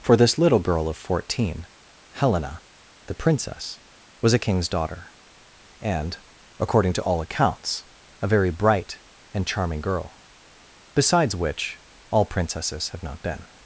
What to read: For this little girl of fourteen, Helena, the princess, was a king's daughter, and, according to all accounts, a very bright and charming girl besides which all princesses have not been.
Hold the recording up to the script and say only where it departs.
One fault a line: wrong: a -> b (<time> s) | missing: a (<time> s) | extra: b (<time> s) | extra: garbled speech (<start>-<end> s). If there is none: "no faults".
no faults